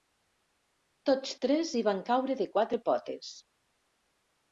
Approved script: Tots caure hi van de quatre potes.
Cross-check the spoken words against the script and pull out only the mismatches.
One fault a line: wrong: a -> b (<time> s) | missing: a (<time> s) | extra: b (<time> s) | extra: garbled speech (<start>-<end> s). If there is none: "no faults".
wrong: caure -> tres (1.4 s)
extra: caure (2.1 s)